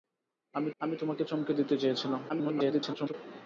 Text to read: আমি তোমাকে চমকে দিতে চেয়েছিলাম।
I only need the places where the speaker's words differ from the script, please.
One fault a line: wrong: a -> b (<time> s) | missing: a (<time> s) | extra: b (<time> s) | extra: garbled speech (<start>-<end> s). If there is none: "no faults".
extra: আমি (0.8 s)
extra: garbled speech (2.3-3.1 s)